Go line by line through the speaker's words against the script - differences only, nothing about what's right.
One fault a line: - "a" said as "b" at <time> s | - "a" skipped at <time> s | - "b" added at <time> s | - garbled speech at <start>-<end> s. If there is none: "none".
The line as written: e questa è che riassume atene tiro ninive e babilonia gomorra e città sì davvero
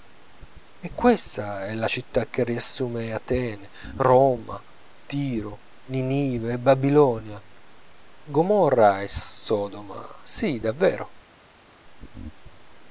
- "la città" added at 1.8 s
- "roma" added at 4.0 s
- "città" said as "sodoma" at 9.1 s